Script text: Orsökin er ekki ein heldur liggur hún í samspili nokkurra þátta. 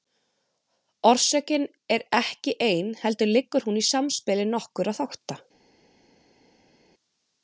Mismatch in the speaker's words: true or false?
false